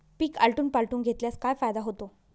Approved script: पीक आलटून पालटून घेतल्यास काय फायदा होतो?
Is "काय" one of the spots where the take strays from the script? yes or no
no